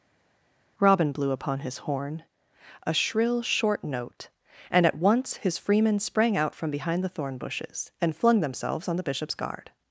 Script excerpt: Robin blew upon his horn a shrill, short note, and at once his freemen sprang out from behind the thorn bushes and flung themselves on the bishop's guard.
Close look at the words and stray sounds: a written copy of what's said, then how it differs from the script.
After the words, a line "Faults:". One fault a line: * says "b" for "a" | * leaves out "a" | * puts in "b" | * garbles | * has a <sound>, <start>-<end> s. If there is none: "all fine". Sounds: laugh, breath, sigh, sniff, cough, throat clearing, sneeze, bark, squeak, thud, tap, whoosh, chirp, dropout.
Robin blew upon his horn a shrill, short note, and at once his freemen sprang out from behind the thorn bushes and flung themselves on the bishop's guard.
Faults:
all fine